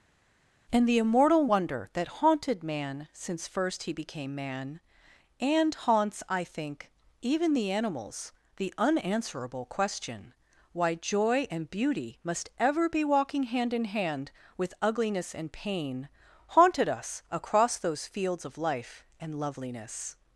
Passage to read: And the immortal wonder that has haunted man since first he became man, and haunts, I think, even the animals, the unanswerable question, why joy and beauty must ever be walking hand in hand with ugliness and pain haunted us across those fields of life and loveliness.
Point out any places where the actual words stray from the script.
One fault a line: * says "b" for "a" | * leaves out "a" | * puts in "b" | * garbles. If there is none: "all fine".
* leaves out "has"